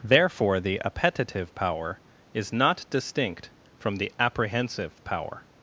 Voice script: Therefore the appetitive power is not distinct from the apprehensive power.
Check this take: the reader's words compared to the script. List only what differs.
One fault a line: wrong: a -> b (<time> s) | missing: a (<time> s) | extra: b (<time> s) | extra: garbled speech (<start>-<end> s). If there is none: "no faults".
no faults